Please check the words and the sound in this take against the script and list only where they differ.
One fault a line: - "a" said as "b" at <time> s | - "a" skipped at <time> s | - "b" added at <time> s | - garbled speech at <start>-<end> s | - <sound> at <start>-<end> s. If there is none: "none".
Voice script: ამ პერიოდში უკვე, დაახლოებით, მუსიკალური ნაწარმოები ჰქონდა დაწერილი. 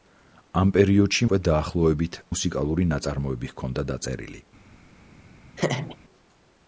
- laugh at 5.6-6.0 s